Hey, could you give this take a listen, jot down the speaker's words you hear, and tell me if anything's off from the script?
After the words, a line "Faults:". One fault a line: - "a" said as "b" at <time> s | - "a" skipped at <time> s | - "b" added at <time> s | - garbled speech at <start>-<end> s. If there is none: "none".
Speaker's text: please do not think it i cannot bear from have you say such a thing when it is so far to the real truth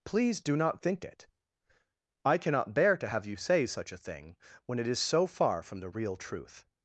please do not think it i cannot bear to have you say such a thing when it is so far from the real truth
Faults:
- "from" said as "to" at 3.0 s
- "to" said as "from" at 5.6 s